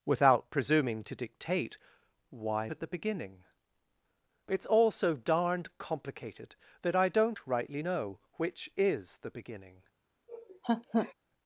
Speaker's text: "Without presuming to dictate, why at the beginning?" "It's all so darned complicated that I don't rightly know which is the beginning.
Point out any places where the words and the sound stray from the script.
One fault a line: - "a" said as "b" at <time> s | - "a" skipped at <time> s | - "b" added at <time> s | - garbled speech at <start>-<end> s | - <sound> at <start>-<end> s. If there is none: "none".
- laugh at 10.3-11.1 s